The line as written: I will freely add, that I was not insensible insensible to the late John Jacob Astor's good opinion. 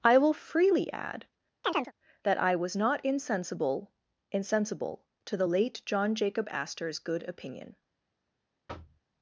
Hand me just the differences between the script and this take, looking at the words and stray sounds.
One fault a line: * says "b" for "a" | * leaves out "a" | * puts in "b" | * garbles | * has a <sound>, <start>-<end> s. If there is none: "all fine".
* has a chirp, 1.6-1.9 s
* has a thud, 8.7-9.0 s